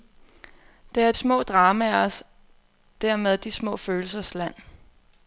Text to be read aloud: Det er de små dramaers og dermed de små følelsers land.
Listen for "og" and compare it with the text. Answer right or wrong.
wrong